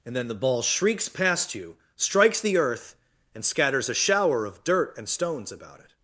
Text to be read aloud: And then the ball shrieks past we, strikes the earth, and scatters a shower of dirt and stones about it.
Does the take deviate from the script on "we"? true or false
true